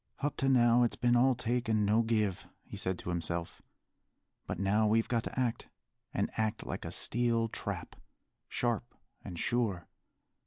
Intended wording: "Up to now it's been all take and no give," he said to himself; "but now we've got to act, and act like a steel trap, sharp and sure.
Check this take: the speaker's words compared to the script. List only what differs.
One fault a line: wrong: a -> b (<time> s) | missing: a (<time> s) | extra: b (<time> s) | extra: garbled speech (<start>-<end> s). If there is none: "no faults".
no faults